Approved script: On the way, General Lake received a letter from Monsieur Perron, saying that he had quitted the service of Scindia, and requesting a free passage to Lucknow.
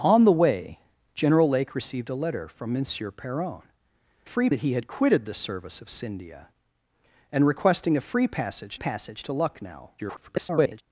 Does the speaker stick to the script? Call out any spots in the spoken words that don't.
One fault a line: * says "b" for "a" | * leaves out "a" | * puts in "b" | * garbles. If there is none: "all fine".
* says "free" for "saying"
* puts in "passage"
* garbles